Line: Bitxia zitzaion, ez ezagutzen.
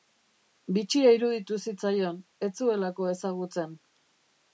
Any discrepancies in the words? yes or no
yes